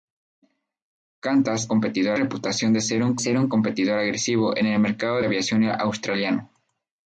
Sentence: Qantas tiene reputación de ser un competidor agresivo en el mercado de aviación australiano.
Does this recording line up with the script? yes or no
no